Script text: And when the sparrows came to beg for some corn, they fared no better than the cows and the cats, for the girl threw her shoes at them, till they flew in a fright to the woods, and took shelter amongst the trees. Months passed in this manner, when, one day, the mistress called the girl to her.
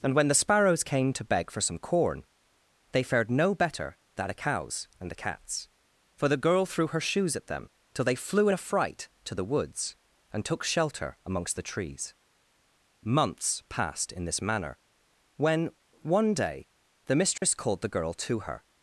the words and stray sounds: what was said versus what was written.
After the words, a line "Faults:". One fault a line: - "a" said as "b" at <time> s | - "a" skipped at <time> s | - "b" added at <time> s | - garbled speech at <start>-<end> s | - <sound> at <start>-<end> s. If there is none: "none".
And when the sparrows came to beg for some corn, they fared no better than the cows and the cats, for the girl threw her shoes at them, till they flew in a fright to the woods, and took shelter amongst the trees. Months passed in this manner, when, one day, the mistress called the girl to her.
Faults:
- dropout at 17.4-17.4 s